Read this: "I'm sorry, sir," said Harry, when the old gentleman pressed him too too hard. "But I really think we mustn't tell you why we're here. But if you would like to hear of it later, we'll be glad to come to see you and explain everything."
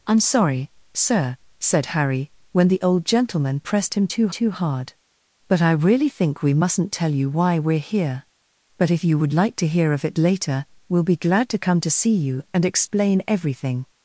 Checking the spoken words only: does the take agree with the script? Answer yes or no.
yes